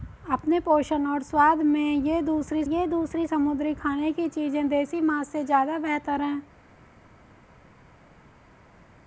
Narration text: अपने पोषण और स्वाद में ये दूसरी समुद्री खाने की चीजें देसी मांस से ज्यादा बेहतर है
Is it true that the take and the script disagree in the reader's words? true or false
true